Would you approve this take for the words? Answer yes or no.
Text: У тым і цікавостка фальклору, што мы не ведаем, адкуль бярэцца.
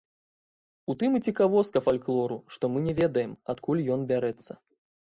no